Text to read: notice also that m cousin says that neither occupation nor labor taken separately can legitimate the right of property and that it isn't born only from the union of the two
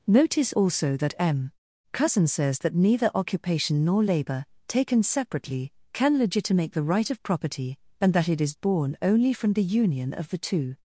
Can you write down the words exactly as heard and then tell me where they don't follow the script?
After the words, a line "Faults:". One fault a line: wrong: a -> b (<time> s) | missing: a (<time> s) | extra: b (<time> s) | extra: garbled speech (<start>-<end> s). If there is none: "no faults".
notice also that m cousin says that neither occupation nor labor taken separately can legitimate the right of property and that it is born only from the union of the two
Faults:
wrong: isn't -> is (8.4 s)